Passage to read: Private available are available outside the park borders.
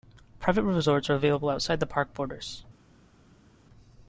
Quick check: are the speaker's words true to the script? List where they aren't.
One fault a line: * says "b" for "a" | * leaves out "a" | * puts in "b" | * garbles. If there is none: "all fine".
* says "resorts" for "available"